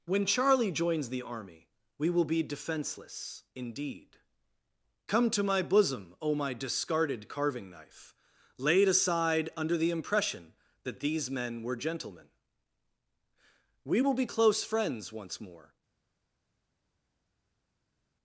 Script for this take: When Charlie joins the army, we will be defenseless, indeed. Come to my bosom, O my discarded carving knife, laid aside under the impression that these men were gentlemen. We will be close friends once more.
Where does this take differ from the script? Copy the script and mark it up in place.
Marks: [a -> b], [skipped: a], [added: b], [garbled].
When Charlie joins the army, we will be defenseless, indeed. Come to my bosom, O my discarded carving knife, laid aside under the impression that these men were gentlemen. We will be close friends once more.